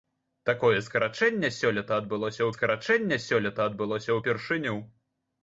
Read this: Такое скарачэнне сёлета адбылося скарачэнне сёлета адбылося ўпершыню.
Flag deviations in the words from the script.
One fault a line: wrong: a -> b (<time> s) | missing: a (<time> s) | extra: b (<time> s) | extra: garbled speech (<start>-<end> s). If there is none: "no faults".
no faults